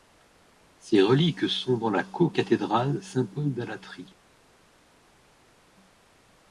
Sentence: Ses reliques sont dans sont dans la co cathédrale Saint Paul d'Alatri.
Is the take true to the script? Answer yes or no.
no